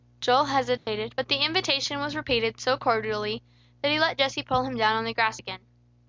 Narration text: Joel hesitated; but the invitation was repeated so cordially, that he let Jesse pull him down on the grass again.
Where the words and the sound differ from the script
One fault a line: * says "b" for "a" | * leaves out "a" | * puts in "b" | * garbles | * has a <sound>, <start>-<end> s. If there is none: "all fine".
* has a dropout, 0.8-0.9 s